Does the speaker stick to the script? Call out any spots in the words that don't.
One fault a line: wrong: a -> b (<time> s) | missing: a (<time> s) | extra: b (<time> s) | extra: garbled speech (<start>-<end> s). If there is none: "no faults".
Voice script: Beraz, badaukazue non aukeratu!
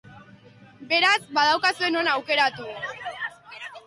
no faults